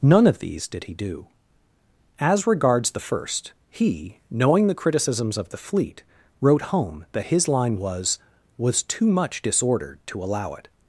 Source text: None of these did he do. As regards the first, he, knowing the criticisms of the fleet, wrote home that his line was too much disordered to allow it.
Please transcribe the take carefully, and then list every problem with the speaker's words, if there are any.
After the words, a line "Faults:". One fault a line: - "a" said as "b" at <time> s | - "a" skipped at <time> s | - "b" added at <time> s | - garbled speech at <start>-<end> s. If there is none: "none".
None of these did he do. As regards the first, he, knowing the criticisms of the fleet, wrote home that his line was was too much disordered to allow it.
Faults:
- "was" added at 8.6 s